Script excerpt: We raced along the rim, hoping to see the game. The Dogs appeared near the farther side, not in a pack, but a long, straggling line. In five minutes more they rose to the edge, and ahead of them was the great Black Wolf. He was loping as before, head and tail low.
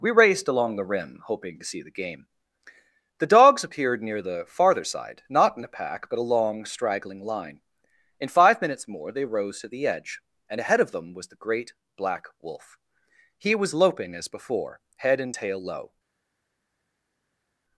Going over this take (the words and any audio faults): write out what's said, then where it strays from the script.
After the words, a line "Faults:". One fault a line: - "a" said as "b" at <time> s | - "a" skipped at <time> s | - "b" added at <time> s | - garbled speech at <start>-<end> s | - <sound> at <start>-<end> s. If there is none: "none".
We raced along the rim, hoping to see the game. The Dogs appeared near the farther side, not in a pack, but a long, straggling line. In five minutes more they rose to the edge, and ahead of them was the great Black Wolf. He was loping as before, head and tail low.
Faults:
none